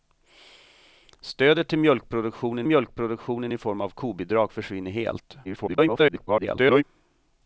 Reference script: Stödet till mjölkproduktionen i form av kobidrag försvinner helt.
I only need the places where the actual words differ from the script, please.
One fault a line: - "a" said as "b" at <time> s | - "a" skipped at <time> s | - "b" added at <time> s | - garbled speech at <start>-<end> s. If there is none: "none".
- "mjölkproduktionen" added at 2.7 s
- garbled speech at 5.4-6.8 s